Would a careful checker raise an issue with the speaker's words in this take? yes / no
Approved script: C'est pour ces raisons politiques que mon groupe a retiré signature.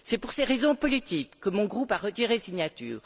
no